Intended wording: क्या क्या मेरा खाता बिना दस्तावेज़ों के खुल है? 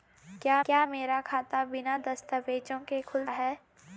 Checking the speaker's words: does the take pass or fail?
pass